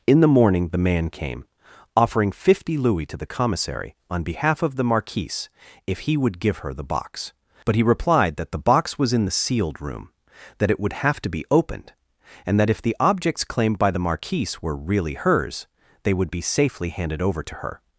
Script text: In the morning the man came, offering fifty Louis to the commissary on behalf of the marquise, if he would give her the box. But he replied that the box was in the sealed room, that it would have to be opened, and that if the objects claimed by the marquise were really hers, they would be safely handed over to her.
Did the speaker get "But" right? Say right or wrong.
right